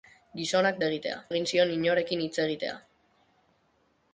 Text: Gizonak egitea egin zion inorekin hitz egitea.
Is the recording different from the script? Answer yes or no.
no